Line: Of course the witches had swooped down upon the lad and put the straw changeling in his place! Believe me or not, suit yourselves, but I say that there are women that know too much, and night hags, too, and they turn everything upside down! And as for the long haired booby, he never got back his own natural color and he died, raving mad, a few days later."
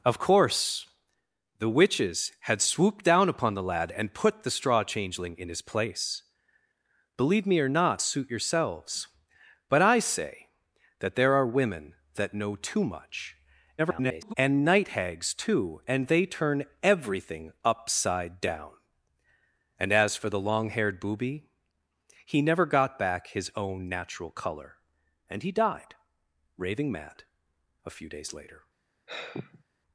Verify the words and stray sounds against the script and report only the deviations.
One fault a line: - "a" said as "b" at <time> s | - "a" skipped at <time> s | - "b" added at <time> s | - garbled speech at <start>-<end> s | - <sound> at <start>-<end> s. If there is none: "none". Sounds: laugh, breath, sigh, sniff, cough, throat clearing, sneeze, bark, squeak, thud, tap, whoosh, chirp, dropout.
- garbled speech at 13.8-14.3 s
- sigh at 29.1-29.6 s